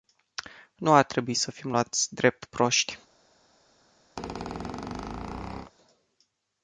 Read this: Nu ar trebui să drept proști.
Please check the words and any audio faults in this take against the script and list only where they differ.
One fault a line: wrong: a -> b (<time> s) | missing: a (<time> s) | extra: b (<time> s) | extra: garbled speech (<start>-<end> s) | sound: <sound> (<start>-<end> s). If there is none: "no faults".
extra: fim luați (1.5 s)
sound: squeak (4.2-5.7 s)